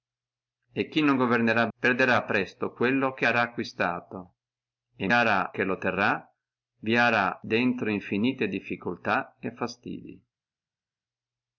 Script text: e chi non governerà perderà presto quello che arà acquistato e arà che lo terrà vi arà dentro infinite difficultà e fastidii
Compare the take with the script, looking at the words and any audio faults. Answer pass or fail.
pass